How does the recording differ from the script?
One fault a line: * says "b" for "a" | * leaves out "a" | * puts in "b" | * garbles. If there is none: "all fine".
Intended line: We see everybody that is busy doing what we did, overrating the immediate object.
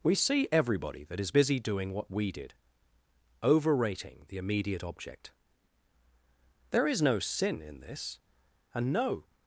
* puts in "There is no sin in this and no"